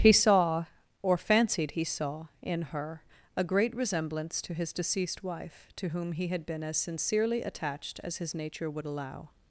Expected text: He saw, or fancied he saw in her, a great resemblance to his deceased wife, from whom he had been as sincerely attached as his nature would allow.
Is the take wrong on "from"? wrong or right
wrong